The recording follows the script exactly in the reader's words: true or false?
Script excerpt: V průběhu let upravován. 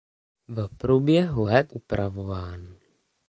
true